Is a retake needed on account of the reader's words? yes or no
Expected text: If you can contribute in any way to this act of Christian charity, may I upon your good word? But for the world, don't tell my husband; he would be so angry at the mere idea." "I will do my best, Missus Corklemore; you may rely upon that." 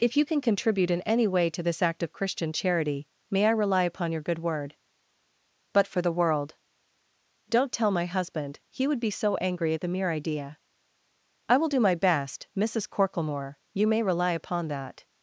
yes